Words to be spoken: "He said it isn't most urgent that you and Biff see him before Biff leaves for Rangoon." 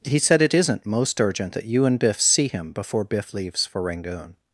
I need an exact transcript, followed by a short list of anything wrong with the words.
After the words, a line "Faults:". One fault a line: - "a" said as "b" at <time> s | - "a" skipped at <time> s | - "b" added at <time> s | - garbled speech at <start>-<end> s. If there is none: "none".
"He said it isn't most urgent that you and Biff see him before Biff leaves for Rangoon."
Faults:
none